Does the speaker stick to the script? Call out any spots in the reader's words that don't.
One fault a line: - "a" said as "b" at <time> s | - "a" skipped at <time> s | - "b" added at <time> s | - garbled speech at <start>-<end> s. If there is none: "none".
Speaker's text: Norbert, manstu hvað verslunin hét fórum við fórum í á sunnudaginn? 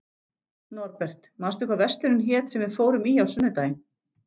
- "fórum" said as "sem" at 2.5 s